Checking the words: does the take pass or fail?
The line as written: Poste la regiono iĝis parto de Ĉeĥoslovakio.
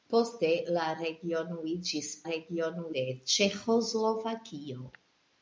fail